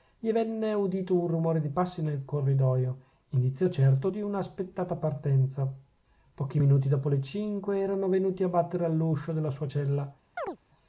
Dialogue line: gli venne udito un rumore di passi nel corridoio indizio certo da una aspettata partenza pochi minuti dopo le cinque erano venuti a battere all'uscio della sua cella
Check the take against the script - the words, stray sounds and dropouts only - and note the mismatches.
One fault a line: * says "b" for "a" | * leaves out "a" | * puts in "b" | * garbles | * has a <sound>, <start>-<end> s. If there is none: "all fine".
* says "di" for "da"
* has a chirp, 10.4-10.6 s